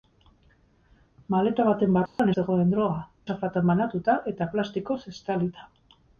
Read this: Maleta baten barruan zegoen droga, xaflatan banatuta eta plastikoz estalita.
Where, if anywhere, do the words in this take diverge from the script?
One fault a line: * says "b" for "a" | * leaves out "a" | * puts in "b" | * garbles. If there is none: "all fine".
all fine